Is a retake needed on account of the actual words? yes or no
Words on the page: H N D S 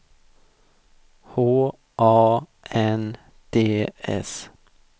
yes